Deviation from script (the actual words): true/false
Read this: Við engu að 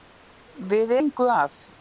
false